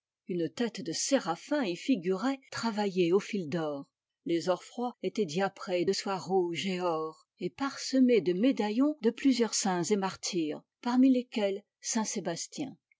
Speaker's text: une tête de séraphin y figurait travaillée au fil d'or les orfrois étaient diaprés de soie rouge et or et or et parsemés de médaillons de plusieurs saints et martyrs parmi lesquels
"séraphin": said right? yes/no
yes